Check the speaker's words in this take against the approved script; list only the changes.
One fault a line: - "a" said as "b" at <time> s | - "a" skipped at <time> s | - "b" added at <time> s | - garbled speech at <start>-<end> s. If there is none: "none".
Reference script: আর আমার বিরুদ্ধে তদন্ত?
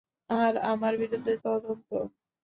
none